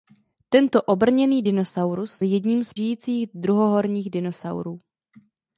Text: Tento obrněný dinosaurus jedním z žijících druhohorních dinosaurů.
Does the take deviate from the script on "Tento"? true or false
false